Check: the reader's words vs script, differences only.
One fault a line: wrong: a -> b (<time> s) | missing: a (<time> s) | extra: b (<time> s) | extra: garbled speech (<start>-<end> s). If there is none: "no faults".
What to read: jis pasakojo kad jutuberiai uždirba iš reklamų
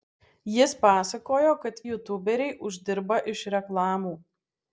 no faults